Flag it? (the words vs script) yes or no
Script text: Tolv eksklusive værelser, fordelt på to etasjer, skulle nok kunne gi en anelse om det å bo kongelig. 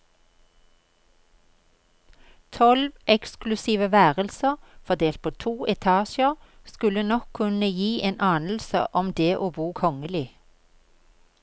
no